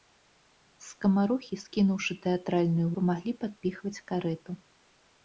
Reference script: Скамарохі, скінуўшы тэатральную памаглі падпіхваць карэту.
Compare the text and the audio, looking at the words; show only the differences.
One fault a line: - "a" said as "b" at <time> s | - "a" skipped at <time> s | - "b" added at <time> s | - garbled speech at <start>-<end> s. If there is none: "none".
none